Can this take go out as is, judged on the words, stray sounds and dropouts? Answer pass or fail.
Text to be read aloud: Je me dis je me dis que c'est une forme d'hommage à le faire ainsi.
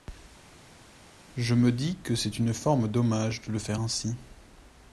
fail